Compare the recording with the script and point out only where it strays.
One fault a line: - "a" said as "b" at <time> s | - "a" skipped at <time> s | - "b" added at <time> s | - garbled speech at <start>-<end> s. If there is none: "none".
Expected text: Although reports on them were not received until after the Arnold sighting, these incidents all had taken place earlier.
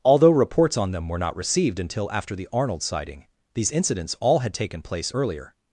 none